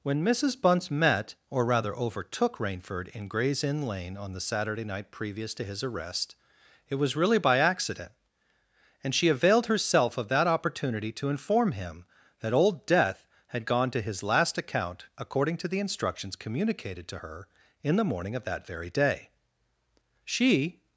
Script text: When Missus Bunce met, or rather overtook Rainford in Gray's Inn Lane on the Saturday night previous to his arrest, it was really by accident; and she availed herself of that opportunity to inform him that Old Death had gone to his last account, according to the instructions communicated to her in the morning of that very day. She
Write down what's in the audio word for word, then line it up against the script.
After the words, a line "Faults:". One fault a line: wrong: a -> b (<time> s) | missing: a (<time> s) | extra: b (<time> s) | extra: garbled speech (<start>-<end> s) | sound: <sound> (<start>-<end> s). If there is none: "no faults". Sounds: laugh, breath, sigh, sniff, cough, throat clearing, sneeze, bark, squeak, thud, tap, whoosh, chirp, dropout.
When Missus Bunce met, or rather overtook Rainford in Gray's Inn Lane on the Saturday night previous to his arrest, it was really by accident; and she availed herself of that opportunity to inform him that Old Death had gone to his last account, according to the instructions communicated to her in the morning of that very day. She
Faults:
no faults